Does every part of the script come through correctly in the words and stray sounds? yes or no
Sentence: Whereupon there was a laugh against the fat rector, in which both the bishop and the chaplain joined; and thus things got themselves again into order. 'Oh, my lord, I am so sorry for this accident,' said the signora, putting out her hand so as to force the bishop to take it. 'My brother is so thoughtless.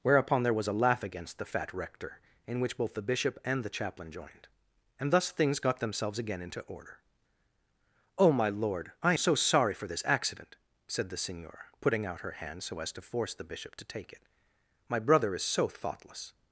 no